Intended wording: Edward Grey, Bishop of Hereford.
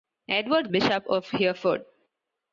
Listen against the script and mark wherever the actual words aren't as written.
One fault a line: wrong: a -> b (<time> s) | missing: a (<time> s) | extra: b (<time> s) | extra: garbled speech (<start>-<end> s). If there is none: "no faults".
missing: Grey (0.7 s)